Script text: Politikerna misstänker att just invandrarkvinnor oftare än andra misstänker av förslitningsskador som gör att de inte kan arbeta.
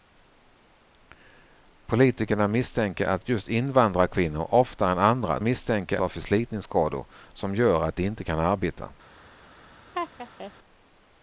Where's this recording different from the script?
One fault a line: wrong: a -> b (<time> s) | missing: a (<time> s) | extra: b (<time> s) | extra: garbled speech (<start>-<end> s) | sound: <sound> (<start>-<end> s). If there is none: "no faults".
sound: laugh (9.9-10.5 s)